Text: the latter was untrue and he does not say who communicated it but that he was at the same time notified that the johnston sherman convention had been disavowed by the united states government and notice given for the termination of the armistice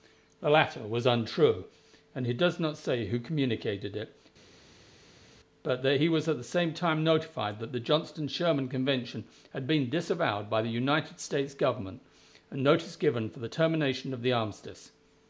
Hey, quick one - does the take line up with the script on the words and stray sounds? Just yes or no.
yes